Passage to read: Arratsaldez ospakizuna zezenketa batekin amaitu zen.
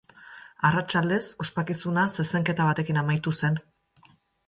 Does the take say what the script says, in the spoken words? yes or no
yes